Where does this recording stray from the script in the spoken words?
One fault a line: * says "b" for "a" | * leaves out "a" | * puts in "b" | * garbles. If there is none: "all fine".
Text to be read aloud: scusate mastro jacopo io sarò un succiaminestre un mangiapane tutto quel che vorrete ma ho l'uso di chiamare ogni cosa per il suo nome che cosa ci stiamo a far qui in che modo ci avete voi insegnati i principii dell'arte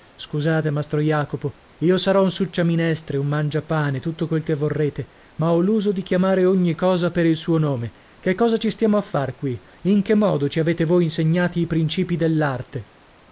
all fine